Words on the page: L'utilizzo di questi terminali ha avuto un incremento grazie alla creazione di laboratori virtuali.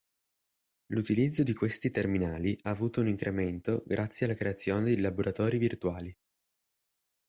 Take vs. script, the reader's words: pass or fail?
pass